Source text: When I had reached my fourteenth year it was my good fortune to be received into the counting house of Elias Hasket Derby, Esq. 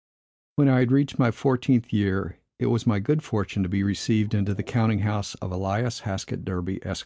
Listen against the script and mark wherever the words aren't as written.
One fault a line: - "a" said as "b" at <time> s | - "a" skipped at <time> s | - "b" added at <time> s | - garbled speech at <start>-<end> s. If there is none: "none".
none